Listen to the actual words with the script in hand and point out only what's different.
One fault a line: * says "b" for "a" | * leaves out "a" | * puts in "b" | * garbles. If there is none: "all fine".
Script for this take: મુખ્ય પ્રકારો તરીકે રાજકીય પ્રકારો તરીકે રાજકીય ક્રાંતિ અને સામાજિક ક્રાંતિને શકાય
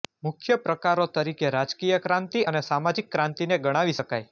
* leaves out "પ્રકારો તરીકે રાજકીય"
* puts in "ગણાવી"